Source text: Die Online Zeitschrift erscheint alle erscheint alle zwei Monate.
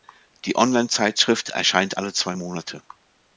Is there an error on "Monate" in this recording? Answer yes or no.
no